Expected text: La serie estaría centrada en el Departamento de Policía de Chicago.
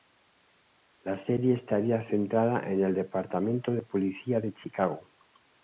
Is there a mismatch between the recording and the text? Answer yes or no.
no